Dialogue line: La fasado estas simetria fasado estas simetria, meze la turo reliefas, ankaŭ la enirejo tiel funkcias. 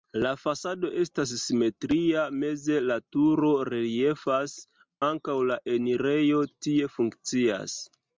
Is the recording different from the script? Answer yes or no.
yes